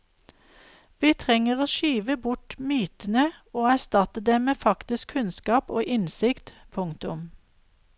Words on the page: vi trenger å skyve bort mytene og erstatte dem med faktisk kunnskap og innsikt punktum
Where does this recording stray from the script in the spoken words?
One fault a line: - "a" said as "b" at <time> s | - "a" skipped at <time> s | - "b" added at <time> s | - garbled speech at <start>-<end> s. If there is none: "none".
none